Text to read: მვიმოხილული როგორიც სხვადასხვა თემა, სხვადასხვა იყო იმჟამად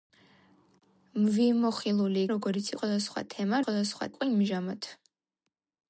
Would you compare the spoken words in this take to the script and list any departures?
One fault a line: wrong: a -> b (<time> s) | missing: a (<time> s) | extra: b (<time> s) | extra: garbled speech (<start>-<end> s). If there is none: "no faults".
no faults